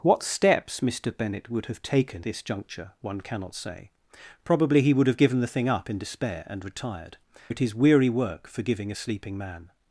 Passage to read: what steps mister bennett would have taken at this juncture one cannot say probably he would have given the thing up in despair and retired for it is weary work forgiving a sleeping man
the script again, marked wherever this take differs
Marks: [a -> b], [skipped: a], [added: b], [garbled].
what steps mister bennett would have taken [skipped: at] this juncture one cannot say probably he would have given the thing up in despair and retired [skipped: for] it is weary work forgiving a sleeping man